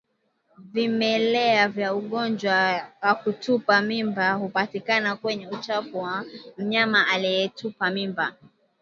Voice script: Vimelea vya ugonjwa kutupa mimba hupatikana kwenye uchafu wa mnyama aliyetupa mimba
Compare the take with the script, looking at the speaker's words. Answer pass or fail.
fail